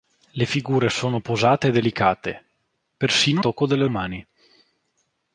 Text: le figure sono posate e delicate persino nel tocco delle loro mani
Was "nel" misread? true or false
true